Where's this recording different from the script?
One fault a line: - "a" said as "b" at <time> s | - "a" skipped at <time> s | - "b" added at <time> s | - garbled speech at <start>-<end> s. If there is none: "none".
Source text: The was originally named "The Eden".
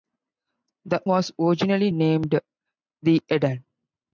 none